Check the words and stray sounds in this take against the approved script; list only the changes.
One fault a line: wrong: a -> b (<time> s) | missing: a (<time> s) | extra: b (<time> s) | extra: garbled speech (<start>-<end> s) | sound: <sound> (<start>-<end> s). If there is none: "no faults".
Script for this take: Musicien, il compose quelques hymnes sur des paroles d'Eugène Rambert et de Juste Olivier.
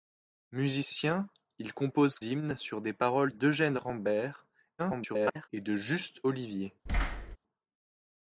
missing: quelques (2.2 s)
extra: garbled speech (4.8-5.5 s)
sound: thud (6.9-7.4 s)